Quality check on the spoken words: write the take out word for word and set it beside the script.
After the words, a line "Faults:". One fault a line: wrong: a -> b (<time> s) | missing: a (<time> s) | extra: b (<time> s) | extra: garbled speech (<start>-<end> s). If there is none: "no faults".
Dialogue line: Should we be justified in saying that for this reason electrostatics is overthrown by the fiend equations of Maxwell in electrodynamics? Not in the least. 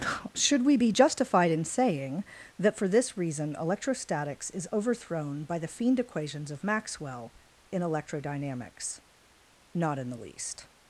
Should we be justified in saying that for this reason electrostatics is overthrown by the fiend equations of Maxwell in electrodynamics? Not in the least.
Faults:
no faults